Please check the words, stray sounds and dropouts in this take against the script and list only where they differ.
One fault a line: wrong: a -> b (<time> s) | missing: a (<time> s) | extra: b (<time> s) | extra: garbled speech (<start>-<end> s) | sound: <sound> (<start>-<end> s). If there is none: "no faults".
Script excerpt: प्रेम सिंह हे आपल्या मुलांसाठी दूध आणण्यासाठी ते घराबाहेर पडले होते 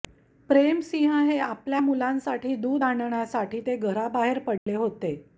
sound: dropout (4.6-4.7 s)